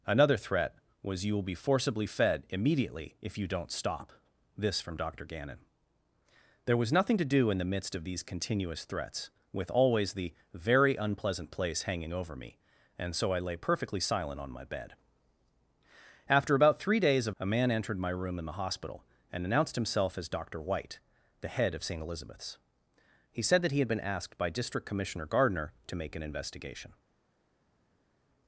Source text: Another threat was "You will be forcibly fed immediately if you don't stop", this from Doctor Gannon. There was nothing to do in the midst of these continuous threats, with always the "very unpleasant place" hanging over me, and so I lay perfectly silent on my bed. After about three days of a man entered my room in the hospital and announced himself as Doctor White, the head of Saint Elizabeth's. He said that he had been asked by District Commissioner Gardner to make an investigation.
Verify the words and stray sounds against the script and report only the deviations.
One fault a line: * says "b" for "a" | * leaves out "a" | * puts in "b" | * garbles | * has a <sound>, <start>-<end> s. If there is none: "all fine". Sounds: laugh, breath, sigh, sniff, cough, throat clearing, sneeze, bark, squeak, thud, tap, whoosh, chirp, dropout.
all fine